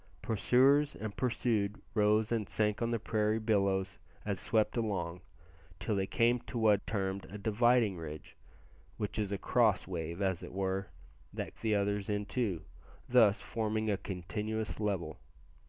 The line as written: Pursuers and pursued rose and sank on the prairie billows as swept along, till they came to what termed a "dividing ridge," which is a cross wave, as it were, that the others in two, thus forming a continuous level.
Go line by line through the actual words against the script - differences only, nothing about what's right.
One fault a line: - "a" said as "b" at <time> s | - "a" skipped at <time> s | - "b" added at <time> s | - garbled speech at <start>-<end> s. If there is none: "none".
none